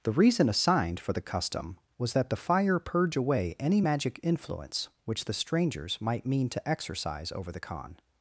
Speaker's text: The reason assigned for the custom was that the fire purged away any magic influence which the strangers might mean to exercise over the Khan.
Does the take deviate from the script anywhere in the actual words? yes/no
yes